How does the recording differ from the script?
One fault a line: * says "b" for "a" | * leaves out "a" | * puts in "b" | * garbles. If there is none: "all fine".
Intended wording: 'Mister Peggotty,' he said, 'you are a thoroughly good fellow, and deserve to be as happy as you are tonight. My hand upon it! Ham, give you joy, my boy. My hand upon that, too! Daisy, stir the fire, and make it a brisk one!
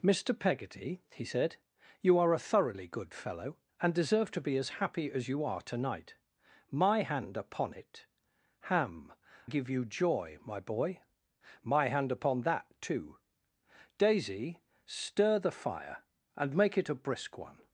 all fine